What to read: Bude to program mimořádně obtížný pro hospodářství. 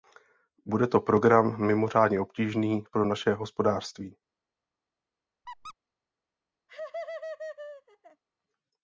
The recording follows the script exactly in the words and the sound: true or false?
false